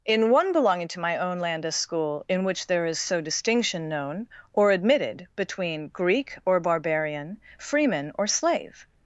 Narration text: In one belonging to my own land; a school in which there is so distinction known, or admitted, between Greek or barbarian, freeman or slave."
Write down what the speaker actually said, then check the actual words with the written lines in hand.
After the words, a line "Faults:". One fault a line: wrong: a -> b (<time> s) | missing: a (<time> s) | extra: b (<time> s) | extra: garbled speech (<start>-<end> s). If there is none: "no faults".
In one belonging to my own land; a school in which there is so distinction known, or admitted, between Greek or barbarian, freeman or slave."
Faults:
no faults